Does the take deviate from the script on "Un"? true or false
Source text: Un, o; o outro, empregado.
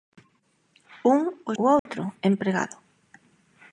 false